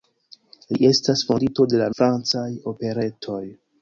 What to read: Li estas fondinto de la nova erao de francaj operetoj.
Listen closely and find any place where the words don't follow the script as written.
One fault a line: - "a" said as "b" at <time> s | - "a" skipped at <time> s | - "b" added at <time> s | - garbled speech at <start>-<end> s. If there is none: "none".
- "nova erao de" skipped at 1.9 s